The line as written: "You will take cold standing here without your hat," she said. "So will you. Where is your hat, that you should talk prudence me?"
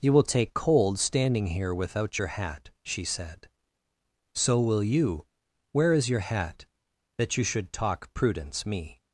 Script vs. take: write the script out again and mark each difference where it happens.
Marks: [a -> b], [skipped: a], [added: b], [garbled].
"You will take cold standing here without your hat," she said. "So will you. Where is your hat, that you should talk prudence me?"